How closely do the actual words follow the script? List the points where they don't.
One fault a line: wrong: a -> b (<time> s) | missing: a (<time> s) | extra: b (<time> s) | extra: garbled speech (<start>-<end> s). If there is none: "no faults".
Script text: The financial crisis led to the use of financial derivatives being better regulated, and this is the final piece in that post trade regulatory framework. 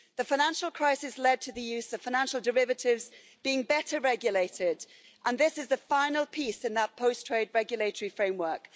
no faults